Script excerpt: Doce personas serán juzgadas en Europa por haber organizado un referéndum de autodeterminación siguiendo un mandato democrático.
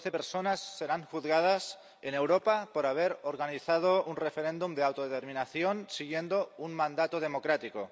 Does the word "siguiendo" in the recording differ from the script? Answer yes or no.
no